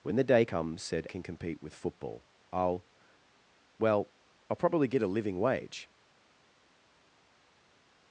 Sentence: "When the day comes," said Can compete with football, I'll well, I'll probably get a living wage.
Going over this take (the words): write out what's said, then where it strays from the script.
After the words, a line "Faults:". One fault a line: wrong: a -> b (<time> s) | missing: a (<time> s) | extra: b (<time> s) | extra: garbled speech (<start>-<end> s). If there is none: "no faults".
"When the day comes," said Can compete with football, I'll well, I'll probably get a living wage.
Faults:
no faults